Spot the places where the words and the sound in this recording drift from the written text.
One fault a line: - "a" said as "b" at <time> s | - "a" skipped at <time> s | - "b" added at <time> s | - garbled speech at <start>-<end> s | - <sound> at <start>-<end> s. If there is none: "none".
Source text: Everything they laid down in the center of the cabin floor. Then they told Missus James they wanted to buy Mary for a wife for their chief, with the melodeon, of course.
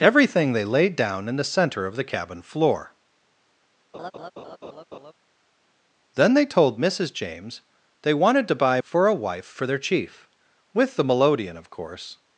- laugh at 3.9-5.1 s
- "Mary" skipped at 8.8 s